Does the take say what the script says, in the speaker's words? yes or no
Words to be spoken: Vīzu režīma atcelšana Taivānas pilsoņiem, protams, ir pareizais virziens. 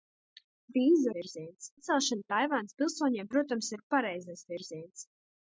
no